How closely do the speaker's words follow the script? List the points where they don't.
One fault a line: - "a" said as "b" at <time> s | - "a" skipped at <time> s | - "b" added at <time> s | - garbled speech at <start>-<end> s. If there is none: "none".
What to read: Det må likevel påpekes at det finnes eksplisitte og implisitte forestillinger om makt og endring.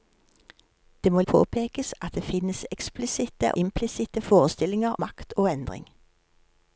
- "likevel" skipped at 1.2 s
- "og" skipped at 3.5 s
- "om" skipped at 4.9 s